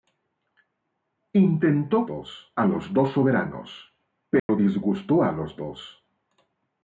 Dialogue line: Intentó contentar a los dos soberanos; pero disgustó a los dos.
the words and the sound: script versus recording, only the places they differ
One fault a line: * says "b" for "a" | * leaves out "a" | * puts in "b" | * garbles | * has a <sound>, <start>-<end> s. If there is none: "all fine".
* says "dos" for "contentar"
* has a dropout, 4.4-4.5 s